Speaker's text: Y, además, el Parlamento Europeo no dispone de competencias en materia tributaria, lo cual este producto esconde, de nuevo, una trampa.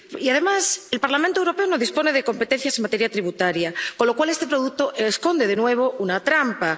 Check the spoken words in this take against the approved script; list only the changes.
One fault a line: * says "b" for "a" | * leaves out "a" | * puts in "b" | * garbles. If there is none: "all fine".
* puts in "con"